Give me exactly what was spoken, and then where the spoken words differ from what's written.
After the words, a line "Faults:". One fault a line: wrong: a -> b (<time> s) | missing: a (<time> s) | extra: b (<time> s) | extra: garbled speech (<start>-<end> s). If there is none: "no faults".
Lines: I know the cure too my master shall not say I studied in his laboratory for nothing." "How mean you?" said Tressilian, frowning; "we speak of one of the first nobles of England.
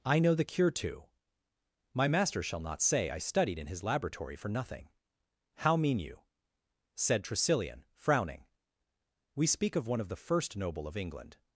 I know the cure too my master shall not say I studied in his laboratory for nothing." "How mean you?" said Tressilian, frowning; "we speak of one of the first noble of England.
Faults:
wrong: nobles -> noble (10.6 s)